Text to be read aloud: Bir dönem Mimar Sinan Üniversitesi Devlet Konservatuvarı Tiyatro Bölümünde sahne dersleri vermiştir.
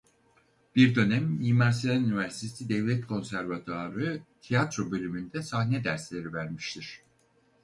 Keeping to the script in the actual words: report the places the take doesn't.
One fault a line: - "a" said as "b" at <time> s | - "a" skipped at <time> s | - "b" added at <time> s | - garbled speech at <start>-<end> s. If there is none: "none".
none